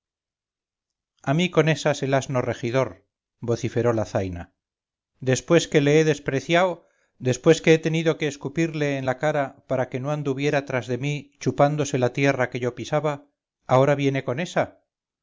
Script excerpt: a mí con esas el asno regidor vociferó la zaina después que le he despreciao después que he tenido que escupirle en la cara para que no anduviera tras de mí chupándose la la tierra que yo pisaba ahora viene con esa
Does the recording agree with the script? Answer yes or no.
no